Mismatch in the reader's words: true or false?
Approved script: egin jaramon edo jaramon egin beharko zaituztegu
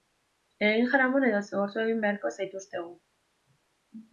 true